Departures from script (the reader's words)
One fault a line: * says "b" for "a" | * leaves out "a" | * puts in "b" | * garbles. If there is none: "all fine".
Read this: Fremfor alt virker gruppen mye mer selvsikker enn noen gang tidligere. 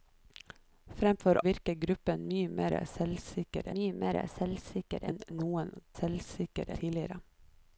* leaves out "alt"
* puts in "mye mer selvsikker"
* says "selvsikker" for "gang"